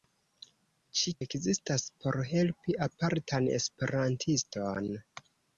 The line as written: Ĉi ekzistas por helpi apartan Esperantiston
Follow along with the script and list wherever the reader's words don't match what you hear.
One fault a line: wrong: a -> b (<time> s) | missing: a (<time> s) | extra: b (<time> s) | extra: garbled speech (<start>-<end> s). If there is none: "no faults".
no faults